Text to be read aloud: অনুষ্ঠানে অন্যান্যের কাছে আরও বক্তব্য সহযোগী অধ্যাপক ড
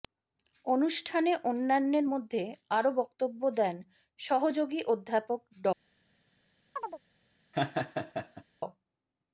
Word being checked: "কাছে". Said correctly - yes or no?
no